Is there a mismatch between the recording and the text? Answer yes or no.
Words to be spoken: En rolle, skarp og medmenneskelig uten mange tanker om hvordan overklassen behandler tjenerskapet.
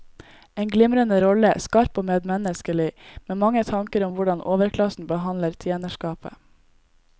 yes